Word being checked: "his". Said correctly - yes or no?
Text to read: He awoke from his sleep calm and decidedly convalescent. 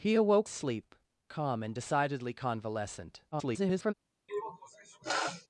no